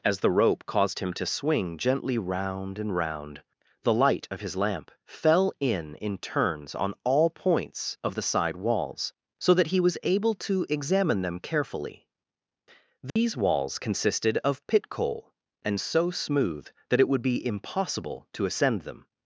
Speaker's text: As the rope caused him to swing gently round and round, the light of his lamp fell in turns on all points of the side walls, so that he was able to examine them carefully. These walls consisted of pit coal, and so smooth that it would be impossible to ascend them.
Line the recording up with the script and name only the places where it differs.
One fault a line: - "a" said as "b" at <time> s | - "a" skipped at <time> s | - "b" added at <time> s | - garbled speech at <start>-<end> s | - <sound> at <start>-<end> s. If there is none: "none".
- "in" added at 6.0 s
- dropout at 13.1-13.2 s